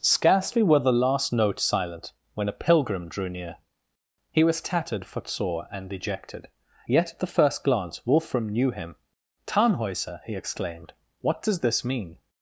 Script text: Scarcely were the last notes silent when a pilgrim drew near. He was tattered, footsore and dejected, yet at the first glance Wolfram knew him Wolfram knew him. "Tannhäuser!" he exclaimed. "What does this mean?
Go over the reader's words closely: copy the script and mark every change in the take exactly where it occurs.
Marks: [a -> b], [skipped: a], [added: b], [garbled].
Scarcely were the last notes silent when a pilgrim drew near. He was tattered, footsore and dejected, yet at the first glance Wolfram knew him [skipped: Wolfram knew him.] "Tannhäuser!" he exclaimed. "What does this mean?